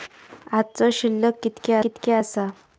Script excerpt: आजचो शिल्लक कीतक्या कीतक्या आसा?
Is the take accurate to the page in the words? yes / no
yes